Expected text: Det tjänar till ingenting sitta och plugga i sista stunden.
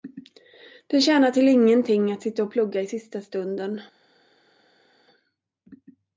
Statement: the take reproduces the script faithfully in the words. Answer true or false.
false